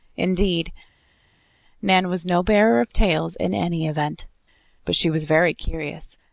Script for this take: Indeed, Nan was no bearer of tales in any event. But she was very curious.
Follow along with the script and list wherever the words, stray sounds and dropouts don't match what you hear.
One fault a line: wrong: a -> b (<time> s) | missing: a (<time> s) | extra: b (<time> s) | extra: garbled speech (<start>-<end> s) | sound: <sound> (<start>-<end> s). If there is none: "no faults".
no faults